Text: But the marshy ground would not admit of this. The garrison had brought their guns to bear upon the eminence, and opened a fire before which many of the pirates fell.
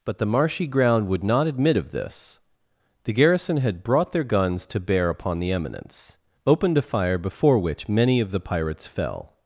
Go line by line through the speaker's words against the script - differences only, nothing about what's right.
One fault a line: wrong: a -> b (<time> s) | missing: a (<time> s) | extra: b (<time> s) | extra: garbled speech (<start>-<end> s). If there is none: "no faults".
missing: and (6.2 s)